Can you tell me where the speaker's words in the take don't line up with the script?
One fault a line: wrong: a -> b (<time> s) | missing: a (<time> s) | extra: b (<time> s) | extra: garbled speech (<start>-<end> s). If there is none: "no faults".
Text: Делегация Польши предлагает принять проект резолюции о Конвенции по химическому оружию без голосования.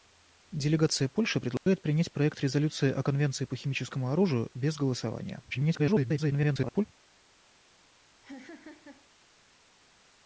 extra: garbled speech (5.5-6.9 s)